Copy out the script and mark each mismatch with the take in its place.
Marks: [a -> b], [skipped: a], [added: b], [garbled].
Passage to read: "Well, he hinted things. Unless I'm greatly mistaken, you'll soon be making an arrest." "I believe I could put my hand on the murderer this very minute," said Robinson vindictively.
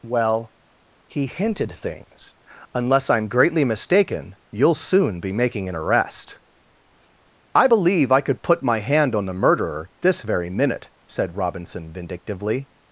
"Well, he hinted things. Unless I'm greatly mistaken, you'll soon be making an arrest." "I believe I could put my hand on the murderer this very minute," said Robinson vindictively.